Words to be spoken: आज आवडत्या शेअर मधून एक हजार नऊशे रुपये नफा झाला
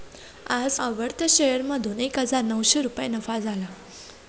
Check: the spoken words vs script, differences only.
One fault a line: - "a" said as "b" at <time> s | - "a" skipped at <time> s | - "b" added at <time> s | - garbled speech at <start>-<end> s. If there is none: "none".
none